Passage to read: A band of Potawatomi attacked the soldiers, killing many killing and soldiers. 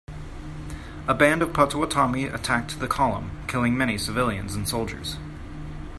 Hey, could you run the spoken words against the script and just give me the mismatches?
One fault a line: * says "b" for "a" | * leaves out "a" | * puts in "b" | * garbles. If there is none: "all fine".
* says "column" for "soldiers"
* says "civilians" for "killing"